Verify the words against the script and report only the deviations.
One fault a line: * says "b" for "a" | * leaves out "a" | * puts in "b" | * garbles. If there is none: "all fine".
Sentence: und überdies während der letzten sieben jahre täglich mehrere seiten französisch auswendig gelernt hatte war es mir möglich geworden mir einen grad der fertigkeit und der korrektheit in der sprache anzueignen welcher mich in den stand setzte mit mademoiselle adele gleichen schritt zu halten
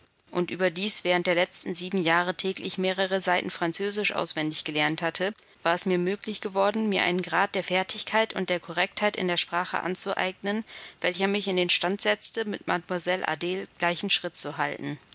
all fine